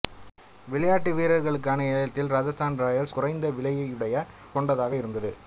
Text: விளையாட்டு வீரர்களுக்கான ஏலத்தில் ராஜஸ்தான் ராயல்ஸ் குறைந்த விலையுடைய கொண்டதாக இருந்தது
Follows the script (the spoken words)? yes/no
yes